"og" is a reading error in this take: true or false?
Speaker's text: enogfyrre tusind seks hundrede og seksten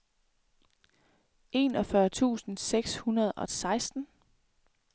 false